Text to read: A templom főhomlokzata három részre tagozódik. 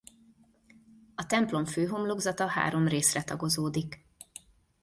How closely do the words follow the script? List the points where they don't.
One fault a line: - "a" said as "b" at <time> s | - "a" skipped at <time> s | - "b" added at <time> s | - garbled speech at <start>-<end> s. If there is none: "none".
none